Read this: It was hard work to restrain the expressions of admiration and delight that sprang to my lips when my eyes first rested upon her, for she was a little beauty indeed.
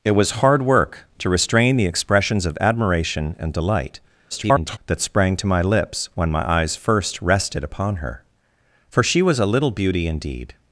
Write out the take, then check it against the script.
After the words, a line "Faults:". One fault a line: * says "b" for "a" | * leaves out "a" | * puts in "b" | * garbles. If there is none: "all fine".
It was hard work to restrain the expressions of admiration and delight [garbled] that sprang to my lips when my eyes first rested upon her, for she was a little beauty indeed.
Faults:
* garbles